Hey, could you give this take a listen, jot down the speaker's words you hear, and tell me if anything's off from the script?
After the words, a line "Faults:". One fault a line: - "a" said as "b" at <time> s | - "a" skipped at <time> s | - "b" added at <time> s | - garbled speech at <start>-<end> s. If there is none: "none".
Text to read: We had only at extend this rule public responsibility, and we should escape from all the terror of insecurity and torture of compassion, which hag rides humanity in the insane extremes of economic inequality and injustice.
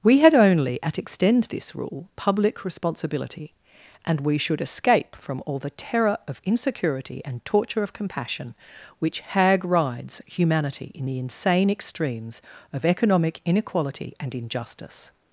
We had only at extend this rule public responsibility, and we should escape from all the terror of insecurity and torture of compassion, which hag rides humanity in the insane extremes of economic inequality and injustice.
Faults:
none